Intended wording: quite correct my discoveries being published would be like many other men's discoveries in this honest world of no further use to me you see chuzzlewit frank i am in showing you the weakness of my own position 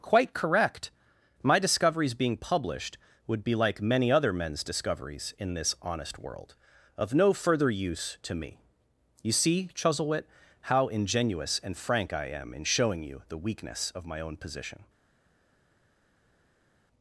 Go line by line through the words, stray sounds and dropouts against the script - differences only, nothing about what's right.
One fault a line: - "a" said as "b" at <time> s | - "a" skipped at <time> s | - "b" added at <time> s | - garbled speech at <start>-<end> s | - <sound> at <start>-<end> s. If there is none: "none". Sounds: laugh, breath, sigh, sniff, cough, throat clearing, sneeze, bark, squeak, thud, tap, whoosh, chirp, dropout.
- "how ingenuous and" added at 10.6 s